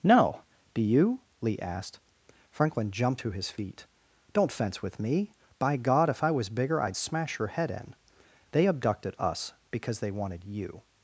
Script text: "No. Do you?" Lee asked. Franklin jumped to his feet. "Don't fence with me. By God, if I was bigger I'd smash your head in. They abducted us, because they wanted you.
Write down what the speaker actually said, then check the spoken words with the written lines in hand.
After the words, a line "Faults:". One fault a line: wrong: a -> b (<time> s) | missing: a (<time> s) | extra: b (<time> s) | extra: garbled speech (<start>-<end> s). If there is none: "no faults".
"No. Do you?" Lee asked. Franklin jumped to his feet. "Don't fence with me. By God, if I was bigger I'd smash your head in. They abducted us, because they wanted you.
Faults:
no faults